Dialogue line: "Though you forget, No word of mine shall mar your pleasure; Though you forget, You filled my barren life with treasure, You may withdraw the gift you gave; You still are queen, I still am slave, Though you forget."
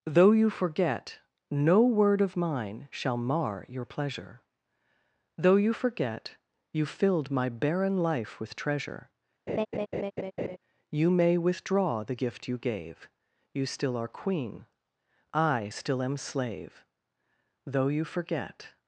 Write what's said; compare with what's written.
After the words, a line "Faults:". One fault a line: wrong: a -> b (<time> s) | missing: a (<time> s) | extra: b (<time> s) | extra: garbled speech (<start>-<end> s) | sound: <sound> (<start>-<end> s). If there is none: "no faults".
"Though you forget, No word of mine shall mar your pleasure; Though you forget, You filled my barren life with treasure, You may withdraw the gift you gave; You still are queen, I still am slave, Though you forget."
Faults:
sound: laugh (9.5-10.6 s)